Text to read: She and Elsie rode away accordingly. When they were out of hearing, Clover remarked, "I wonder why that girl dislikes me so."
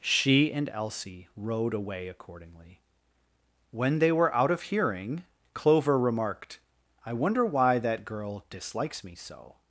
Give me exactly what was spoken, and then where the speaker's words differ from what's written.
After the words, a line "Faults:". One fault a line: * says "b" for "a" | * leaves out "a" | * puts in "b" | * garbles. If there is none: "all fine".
She and Elsie rode away accordingly. When they were out of hearing, Clover remarked, "I wonder why that girl dislikes me so."
Faults:
all fine